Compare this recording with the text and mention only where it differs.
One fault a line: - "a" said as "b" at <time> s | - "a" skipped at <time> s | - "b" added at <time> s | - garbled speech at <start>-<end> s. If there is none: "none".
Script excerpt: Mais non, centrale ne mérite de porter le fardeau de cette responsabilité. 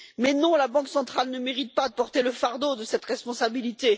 - "la Banque" added at 0.6 s
- "pas" added at 1.7 s